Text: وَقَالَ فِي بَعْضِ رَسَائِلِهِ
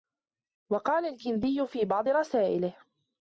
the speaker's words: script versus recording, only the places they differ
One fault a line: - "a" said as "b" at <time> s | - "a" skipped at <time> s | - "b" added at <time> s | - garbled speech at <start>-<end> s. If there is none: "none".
- "الْكِنْدِيُّ" added at 1.1 s